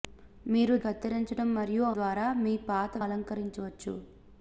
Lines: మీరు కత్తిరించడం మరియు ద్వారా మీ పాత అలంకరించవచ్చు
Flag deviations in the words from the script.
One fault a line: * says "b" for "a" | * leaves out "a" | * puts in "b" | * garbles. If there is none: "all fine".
all fine